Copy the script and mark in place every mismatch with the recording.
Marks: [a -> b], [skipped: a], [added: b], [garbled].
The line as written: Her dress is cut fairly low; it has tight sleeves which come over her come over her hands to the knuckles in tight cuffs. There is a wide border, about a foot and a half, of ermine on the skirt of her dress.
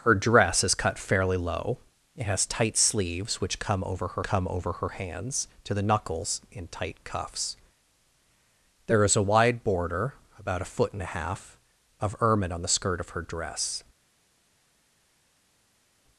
Her dress is cut fairly low; it has tight sleeves which come over her come over her hands to the knuckles in tight cuffs. There is a wide border, about a foot and a half, of ermine on the skirt of her dress.